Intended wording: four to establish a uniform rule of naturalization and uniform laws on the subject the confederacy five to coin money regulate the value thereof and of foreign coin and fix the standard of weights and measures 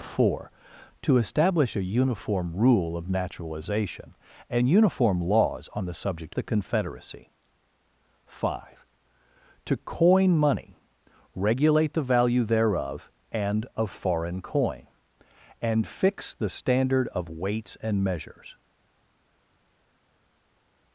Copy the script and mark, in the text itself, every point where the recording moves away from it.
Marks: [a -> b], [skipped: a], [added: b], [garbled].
four to establish a uniform rule of naturalization and uniform laws on the subject the confederacy five to coin money regulate the value thereof and of foreign coin and fix the standard of weights and measures